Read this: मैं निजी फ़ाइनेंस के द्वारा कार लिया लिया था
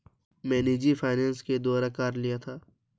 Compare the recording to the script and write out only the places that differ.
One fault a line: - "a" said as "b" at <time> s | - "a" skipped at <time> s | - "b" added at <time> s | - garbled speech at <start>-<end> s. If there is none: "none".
- "लिया" skipped at 2.4 s